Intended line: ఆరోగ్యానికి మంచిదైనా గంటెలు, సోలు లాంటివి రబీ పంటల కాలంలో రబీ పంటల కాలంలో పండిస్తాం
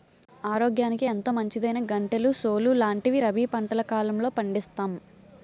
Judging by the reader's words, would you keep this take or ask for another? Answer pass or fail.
fail